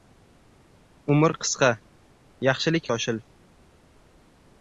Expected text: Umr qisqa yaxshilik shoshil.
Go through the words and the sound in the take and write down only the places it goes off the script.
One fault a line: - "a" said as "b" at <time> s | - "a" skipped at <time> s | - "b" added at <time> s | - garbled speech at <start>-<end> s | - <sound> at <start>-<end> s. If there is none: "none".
none